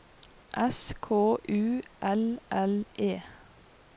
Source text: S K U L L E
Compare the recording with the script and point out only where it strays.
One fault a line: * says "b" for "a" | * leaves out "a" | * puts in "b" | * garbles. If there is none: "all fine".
all fine